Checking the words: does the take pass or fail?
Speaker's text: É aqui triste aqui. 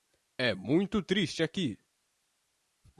fail